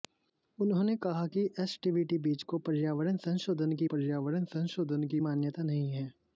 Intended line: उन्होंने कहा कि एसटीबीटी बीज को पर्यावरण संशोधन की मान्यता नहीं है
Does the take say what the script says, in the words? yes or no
no